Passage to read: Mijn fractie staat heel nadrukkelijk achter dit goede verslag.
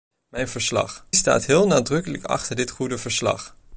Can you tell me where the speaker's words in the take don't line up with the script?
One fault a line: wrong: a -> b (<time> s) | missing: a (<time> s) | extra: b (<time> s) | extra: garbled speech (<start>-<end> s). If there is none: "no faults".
wrong: fractie -> verslag (0.5 s)